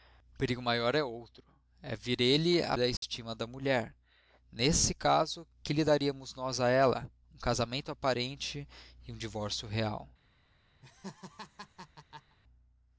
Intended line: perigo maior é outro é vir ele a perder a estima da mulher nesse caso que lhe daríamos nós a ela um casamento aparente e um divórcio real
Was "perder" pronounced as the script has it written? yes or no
no